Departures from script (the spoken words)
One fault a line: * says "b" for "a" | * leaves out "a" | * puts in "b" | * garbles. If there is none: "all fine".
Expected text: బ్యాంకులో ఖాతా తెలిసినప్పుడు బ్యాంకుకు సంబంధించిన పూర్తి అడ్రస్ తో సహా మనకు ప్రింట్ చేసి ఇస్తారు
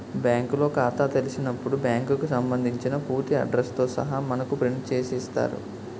all fine